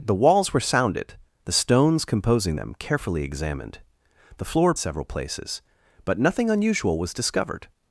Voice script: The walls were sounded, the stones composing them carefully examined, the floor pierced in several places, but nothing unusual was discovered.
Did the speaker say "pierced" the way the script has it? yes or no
no